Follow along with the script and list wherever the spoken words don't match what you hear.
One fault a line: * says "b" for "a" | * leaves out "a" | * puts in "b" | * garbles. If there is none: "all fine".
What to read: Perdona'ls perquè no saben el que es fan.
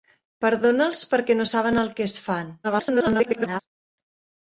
* garbles